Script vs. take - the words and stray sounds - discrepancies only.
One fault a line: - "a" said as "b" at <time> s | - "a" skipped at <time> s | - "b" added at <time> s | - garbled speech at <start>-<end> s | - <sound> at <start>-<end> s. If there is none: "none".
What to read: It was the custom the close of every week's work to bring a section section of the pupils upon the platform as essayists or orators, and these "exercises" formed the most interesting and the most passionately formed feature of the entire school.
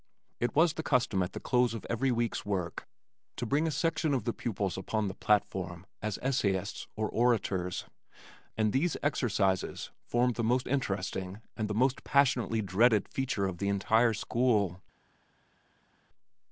- "at" added at 1.2 s
- "section" skipped at 4.1 s
- "formed" said as "dreaded" at 12.6 s